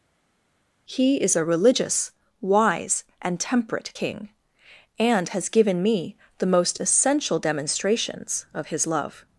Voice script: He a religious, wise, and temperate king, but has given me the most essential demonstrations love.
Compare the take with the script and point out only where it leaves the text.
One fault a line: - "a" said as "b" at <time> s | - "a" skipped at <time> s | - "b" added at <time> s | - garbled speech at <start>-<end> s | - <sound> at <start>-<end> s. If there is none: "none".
- "is" added at 1.2 s
- "but" said as "and" at 5.0 s
- "of his" added at 8.5 s